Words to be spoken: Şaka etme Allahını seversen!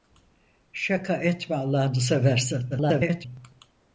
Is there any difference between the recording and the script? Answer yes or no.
yes